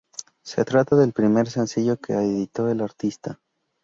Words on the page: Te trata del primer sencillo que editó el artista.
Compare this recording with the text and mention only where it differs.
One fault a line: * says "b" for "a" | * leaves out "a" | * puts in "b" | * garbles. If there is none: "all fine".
* says "Se" for "Te"